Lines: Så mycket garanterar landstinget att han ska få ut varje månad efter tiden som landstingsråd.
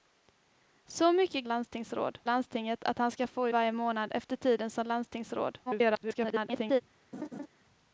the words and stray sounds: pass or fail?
fail